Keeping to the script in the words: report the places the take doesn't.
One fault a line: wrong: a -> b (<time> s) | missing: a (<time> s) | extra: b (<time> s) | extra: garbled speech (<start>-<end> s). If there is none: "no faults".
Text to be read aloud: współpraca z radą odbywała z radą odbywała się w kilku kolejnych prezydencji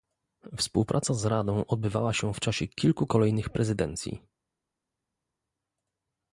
missing: z radą odbywała (2.1 s)
extra: czasie (2.4 s)